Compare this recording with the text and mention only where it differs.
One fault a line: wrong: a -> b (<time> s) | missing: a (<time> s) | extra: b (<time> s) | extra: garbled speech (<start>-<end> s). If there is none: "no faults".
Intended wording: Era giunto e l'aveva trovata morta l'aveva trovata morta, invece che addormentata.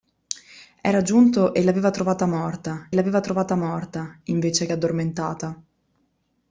no faults